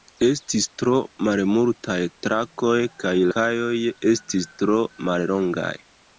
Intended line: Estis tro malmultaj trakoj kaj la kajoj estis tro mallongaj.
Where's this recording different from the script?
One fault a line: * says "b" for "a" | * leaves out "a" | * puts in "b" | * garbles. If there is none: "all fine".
* leaves out "la"